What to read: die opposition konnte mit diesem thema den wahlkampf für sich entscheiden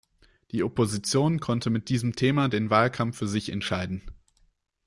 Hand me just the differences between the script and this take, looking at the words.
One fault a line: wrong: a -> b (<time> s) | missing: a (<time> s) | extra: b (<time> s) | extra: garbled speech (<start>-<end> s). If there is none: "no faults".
no faults